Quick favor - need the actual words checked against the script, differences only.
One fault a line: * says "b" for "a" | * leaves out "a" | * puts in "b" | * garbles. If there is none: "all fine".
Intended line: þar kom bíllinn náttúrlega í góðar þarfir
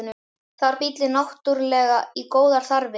* leaves out "kom"